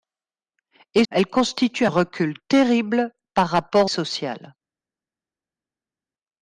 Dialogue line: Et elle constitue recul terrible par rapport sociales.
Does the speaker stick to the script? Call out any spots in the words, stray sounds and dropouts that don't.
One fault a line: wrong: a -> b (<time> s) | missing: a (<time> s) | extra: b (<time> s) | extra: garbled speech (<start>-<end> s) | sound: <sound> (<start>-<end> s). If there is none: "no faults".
no faults